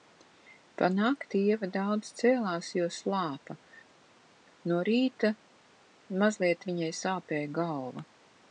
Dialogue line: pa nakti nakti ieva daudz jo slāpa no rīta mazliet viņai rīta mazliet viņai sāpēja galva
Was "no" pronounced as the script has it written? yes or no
yes